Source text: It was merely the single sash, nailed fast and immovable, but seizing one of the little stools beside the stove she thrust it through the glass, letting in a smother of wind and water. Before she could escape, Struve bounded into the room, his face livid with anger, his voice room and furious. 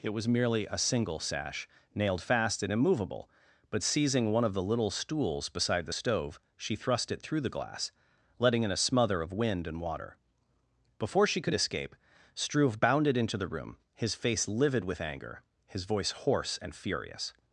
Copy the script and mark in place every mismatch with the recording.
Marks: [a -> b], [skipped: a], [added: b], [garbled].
It was merely [the -> a] single sash, nailed fast and immovable, but seizing one of the little stools beside the stove she thrust it through the glass, letting in a smother of wind and water. Before she could escape, Struve bounded into the room, his face livid with anger, his voice [room -> hoarse] and furious.